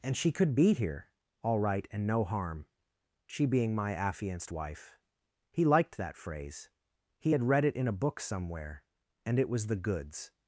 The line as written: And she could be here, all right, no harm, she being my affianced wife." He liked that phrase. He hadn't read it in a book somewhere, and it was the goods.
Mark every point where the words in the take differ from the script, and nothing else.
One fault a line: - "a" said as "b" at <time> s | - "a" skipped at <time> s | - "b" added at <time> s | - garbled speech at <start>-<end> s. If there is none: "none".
- "and" added at 1.9 s
- "hadn't" said as "had" at 7.3 s